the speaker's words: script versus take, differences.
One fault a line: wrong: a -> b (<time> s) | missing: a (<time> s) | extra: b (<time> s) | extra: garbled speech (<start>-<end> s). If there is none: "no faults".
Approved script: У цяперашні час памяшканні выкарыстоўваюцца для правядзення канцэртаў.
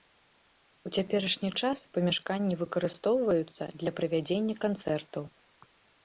no faults